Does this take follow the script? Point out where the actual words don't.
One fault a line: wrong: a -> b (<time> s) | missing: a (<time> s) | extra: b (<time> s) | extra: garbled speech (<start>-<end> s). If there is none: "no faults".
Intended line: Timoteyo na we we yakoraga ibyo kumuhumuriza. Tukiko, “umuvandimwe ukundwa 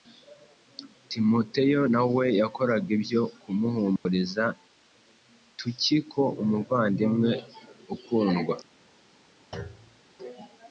missing: we (2.2 s)